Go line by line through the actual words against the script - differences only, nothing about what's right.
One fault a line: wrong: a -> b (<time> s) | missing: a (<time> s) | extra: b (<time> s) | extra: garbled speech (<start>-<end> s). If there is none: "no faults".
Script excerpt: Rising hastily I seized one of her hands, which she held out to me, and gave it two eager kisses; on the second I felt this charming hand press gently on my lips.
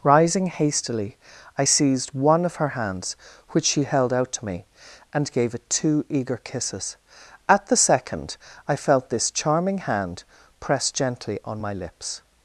wrong: on -> at (7.5 s)